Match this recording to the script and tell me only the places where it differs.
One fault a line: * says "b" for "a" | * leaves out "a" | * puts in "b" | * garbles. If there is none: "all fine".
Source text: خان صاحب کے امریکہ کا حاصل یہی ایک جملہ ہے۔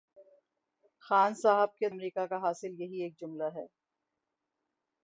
all fine